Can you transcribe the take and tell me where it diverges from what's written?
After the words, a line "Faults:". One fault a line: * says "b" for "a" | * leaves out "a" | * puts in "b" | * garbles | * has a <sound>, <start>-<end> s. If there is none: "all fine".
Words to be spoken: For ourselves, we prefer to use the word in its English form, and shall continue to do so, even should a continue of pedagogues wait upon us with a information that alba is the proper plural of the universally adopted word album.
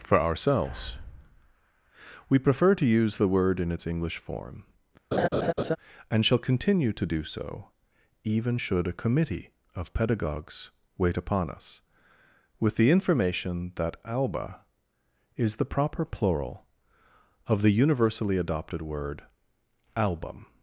For ourselves, we prefer to use the word in its English form, and shall continue to do so, even should a committee of pedagogues wait upon us with the information that alba is the proper plural of the universally adopted word album.
Faults:
* has a laugh, 5.1-5.8 s
* says "committee" for "continue"
* says "the" for "a"